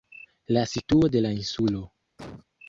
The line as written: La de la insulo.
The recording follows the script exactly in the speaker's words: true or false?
false